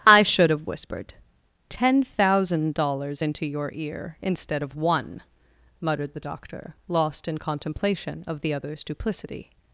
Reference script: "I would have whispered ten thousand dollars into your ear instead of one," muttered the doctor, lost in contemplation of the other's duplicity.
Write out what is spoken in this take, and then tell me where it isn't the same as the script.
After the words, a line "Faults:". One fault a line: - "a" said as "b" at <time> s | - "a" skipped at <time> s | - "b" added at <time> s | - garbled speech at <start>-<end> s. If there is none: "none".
"I should have whispered ten thousand dollars into your ear instead of one," muttered the doctor, lost in contemplation of the other's duplicity.
Faults:
- "would" said as "should" at 0.2 s